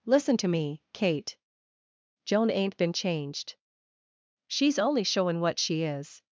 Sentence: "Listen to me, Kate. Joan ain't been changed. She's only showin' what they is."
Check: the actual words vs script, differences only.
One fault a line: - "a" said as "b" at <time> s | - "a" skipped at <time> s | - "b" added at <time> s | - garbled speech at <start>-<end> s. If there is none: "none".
- "they" said as "she" at 5.6 s